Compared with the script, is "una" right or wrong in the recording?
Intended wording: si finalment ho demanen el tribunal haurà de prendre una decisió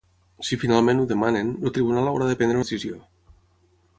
wrong